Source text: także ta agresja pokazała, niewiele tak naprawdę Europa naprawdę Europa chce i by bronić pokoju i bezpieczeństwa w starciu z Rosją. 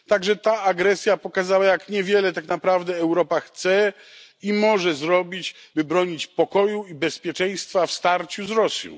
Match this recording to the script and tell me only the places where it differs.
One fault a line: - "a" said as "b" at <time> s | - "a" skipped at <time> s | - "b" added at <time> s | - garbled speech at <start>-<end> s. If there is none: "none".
- "jak" added at 1.6 s
- "naprawdę Europa chce i" said as "chce i może zrobić" at 3.4 s